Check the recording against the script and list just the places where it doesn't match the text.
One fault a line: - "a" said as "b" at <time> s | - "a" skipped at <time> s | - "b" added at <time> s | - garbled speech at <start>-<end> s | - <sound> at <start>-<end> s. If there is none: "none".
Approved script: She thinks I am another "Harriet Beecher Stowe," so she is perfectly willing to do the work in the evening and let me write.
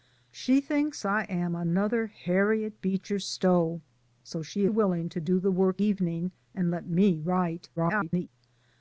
- "is perfectly" skipped at 4.7 s
- "in the" skipped at 5.8 s
- garbled speech at 7.8-8.3 s